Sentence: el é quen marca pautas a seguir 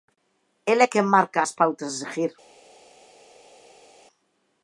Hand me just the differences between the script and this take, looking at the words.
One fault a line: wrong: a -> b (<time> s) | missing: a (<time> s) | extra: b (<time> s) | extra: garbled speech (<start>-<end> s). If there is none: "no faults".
extra: as (1.4 s)